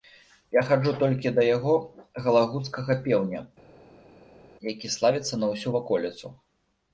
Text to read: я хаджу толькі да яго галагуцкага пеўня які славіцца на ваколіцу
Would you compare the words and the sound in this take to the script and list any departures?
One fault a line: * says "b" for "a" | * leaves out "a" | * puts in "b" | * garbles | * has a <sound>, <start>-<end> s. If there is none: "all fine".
* puts in "ўсю"